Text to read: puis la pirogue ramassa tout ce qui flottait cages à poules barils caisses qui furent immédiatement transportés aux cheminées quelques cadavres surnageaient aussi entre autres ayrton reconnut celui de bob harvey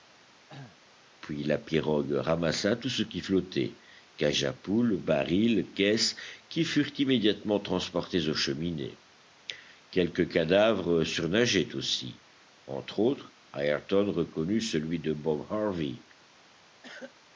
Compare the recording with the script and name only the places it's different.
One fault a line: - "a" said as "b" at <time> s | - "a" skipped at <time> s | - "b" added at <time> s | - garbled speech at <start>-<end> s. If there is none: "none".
none